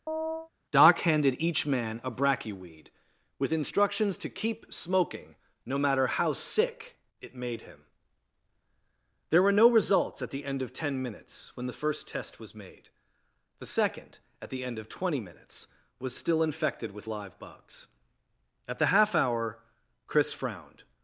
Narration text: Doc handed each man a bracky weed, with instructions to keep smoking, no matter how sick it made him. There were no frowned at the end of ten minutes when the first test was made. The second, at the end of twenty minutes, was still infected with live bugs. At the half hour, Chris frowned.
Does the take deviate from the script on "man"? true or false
false